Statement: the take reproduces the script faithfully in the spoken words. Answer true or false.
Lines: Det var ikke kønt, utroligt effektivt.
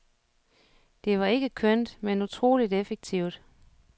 false